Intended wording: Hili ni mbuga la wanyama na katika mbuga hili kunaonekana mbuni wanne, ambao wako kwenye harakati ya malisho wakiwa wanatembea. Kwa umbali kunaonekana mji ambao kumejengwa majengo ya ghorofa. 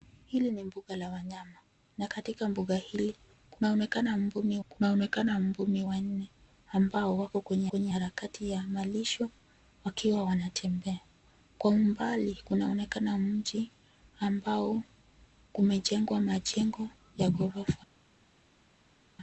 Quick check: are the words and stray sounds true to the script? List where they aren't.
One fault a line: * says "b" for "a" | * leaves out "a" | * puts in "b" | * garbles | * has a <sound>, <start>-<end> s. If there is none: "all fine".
* puts in "kunaonekana mbuni"
* puts in "kwenye"